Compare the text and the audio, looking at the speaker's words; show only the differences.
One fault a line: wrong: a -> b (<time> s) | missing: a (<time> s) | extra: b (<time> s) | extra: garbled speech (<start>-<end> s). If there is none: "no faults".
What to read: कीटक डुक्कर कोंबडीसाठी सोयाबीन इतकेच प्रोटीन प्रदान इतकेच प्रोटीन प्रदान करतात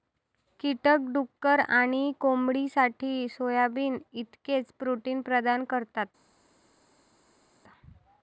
extra: आणि (1.7 s)
missing: इतकेच प्रोटीन प्रदान (5.6 s)